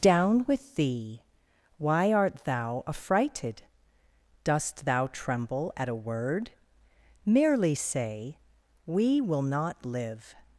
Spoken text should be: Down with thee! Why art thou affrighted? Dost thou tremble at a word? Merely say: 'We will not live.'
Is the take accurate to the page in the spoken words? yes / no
yes